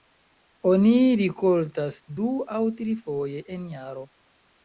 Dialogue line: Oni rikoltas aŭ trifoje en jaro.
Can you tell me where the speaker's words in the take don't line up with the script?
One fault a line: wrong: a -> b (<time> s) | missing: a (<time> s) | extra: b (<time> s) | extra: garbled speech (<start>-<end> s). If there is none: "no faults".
extra: du (2.2 s)